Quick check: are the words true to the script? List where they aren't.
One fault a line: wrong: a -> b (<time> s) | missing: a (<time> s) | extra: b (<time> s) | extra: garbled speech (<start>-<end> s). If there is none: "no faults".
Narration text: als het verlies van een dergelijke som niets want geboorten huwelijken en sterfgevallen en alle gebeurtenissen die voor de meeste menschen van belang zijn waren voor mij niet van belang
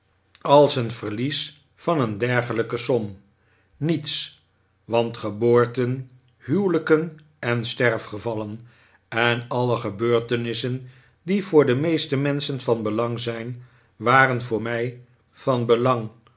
missing: niet (15.0 s)